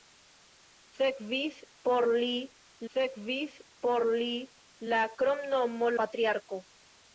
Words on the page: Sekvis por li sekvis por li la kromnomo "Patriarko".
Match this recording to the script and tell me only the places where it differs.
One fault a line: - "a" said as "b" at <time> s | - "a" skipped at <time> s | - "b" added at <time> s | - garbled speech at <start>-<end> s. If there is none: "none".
none